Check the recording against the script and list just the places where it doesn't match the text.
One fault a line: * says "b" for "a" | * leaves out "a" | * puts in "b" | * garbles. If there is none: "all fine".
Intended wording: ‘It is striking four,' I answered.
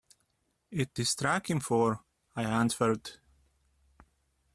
all fine